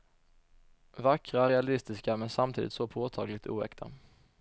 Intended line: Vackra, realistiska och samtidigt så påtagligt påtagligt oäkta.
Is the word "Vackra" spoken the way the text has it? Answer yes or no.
yes